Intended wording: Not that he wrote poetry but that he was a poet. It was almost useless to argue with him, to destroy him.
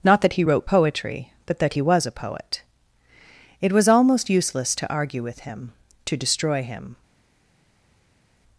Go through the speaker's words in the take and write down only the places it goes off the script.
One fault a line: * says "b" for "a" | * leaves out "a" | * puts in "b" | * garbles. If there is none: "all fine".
all fine